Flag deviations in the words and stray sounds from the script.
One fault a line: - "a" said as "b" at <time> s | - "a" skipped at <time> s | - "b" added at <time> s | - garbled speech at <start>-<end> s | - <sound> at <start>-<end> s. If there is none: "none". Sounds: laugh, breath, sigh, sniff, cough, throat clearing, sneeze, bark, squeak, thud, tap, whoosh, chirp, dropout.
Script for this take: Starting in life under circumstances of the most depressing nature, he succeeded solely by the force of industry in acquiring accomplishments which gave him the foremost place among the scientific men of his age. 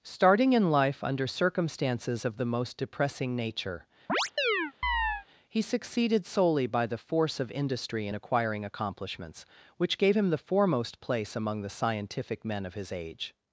- chirp at 4.1-5.3 s